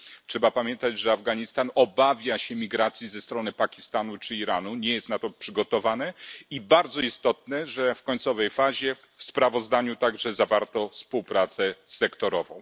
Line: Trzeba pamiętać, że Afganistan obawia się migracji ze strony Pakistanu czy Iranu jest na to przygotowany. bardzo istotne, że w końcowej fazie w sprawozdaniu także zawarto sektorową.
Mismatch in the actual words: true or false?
true